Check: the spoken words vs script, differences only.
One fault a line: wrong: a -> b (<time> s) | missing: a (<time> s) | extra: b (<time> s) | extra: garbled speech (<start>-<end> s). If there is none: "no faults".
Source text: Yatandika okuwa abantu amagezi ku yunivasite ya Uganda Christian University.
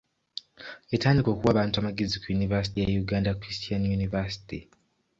no faults